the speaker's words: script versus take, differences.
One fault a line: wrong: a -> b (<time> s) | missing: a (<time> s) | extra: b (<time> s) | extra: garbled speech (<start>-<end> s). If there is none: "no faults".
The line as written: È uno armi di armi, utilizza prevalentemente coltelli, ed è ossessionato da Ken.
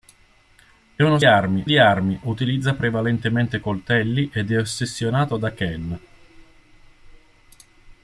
no faults